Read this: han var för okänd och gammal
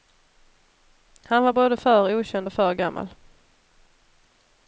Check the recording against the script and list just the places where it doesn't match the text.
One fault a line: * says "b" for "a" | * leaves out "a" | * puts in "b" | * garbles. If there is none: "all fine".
* puts in "både"
* puts in "för"